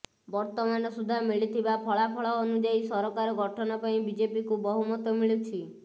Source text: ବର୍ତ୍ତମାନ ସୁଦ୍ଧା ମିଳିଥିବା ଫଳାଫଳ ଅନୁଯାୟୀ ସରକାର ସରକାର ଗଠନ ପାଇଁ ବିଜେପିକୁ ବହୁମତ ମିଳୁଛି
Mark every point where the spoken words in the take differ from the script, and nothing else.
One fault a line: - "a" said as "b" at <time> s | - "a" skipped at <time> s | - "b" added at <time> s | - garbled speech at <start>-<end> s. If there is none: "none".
- "ସରକାର" skipped at 3.4 s